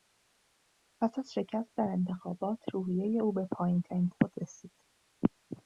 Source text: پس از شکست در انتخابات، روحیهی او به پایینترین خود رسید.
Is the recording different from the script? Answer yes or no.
no